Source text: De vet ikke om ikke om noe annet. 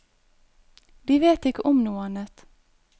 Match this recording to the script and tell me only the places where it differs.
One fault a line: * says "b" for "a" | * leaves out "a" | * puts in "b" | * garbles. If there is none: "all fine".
* leaves out "ikke om"